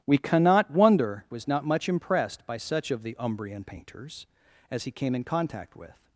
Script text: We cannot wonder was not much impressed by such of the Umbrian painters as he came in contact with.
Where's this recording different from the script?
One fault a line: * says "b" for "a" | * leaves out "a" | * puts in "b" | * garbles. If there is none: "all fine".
all fine